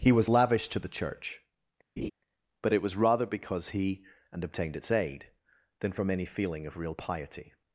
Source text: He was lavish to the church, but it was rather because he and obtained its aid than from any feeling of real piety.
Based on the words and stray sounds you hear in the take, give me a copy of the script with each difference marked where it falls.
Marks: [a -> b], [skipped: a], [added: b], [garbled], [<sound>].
He was lavish to the church, [laugh] but it was rather because he and obtained its aid than from any feeling of real piety.